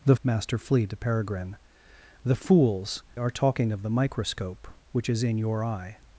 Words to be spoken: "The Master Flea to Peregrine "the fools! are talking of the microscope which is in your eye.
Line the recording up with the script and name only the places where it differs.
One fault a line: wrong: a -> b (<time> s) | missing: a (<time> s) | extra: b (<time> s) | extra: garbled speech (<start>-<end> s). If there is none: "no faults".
no faults